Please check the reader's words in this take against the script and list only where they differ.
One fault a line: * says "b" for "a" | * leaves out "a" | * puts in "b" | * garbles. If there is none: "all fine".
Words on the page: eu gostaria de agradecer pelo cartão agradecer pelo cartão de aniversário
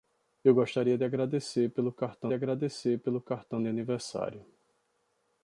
all fine